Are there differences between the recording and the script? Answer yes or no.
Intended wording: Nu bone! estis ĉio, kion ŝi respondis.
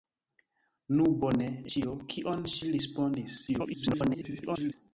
yes